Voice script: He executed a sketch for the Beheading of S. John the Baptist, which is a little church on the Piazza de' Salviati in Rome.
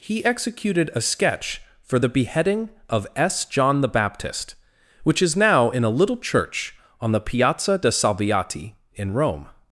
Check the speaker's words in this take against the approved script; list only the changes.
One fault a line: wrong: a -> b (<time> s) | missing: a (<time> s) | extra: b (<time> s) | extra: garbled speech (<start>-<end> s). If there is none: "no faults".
extra: now in (5.4 s)